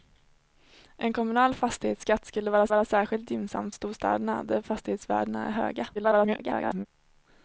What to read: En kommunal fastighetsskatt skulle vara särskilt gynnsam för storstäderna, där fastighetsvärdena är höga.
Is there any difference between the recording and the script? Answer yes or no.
yes